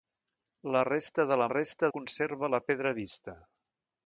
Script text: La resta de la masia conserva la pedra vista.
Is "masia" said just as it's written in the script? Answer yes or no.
no